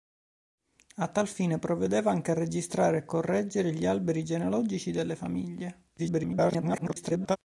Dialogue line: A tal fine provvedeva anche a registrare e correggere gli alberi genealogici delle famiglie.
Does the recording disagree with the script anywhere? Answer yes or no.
yes